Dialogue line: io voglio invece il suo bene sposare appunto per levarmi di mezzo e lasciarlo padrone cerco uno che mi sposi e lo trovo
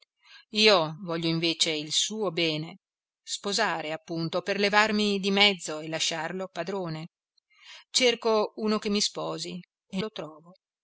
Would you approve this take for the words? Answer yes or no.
yes